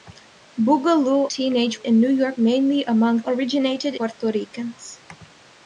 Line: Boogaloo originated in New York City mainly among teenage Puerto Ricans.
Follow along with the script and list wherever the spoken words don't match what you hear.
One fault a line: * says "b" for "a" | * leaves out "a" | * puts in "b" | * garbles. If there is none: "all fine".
* says "teenage" for "originated"
* leaves out "City"
* says "originated" for "teenage"